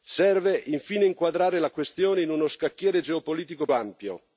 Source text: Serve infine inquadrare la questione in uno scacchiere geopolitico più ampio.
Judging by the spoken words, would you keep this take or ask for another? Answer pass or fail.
fail